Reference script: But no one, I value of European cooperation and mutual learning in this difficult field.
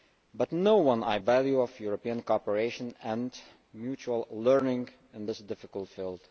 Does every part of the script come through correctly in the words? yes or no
yes